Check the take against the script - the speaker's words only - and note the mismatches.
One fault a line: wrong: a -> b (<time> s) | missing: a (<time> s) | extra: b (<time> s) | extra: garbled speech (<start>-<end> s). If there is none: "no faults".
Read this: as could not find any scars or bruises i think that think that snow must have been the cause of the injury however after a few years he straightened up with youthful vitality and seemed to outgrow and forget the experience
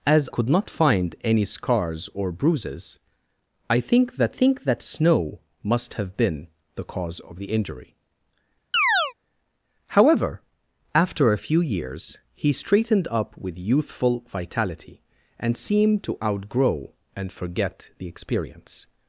no faults